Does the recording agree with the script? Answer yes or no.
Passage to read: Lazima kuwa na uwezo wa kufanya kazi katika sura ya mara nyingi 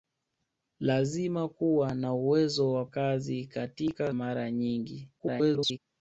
no